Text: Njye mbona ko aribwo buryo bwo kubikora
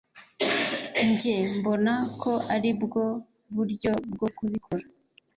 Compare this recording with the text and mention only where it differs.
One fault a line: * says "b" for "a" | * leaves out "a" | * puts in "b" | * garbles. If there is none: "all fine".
all fine